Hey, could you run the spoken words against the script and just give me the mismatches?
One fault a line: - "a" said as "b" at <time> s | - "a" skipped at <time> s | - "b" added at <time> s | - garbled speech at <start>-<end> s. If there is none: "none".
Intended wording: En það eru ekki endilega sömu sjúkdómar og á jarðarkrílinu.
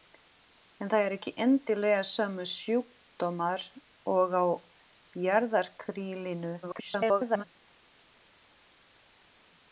- garbled speech at 6.6-7.4 s